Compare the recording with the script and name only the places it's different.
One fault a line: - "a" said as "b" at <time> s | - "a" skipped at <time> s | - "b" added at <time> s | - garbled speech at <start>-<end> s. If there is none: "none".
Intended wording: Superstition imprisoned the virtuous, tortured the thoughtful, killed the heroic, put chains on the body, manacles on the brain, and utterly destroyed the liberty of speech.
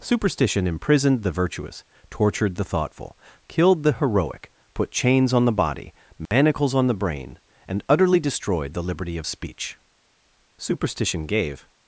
- "Superstition gave" added at 10.6 s